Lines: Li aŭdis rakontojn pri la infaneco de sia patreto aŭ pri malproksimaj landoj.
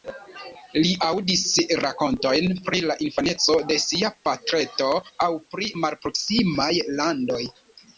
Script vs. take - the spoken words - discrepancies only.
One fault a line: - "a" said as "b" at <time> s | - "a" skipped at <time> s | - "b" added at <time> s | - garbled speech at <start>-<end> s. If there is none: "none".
none